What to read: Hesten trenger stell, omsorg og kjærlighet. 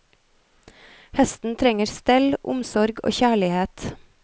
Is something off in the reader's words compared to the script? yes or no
no